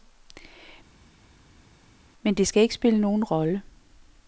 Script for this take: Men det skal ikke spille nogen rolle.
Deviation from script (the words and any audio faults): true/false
false